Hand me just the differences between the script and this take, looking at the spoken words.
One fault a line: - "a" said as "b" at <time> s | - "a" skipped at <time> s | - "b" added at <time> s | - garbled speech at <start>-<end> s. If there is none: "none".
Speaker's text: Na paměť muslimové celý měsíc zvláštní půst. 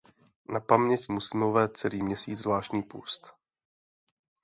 none